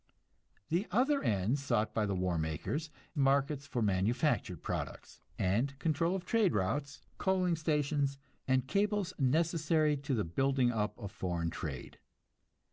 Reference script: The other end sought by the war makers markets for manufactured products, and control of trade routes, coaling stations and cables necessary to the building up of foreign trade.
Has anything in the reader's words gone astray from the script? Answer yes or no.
no